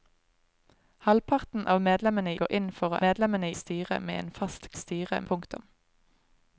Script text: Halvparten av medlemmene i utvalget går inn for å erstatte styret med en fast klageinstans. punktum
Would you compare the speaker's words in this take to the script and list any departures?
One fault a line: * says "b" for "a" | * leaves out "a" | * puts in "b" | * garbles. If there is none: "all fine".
* leaves out "i utvalget"
* says "medlemmene" for "erstatte"
* says "styret" for "klageinstans"